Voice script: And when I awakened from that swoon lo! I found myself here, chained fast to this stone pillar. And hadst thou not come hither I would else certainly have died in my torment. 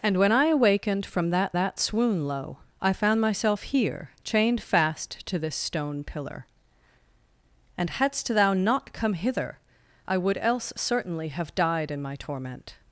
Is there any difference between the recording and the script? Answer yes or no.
yes